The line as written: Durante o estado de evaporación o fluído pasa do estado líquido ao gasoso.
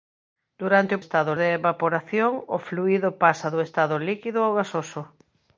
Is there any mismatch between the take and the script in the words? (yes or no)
no